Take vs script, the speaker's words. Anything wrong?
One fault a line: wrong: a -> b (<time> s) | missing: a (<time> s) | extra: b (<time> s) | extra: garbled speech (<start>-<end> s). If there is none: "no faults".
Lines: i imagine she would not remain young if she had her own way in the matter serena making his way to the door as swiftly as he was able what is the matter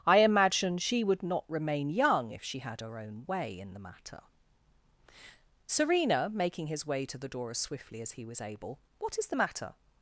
no faults